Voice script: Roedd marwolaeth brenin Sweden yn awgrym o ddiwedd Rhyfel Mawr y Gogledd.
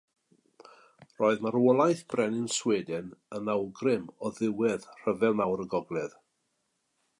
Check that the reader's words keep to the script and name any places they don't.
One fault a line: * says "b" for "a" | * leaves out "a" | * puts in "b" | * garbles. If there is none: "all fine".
all fine